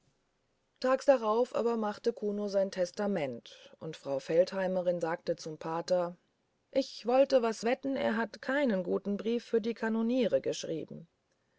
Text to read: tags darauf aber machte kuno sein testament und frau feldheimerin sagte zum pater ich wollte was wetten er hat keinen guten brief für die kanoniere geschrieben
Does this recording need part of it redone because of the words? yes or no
no